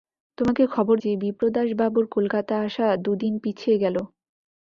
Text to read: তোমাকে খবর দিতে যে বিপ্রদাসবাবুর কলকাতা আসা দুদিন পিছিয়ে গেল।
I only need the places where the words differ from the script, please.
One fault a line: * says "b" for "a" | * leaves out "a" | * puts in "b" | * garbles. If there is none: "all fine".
* leaves out "দিতে"